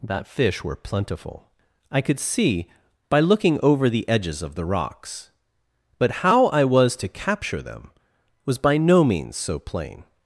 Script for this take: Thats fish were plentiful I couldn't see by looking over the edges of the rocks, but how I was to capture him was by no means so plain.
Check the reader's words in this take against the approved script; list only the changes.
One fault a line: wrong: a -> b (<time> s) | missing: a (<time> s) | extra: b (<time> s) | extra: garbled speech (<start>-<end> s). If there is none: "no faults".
wrong: Thats -> That (0.0 s)
wrong: couldn't -> could (2.0 s)
wrong: him -> them (7.6 s)